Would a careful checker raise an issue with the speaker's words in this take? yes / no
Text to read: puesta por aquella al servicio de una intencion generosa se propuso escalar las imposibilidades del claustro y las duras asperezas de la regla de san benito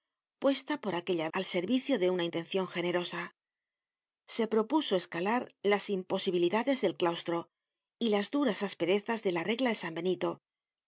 no